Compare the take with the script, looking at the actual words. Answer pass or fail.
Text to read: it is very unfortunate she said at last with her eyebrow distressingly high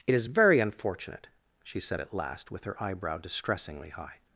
pass